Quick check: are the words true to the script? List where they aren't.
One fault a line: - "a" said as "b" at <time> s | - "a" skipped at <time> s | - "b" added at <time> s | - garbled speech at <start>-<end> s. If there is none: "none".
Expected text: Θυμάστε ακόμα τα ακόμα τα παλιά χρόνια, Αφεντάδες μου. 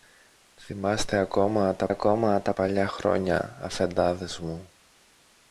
none